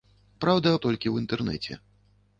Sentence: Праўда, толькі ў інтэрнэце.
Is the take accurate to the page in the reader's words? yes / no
yes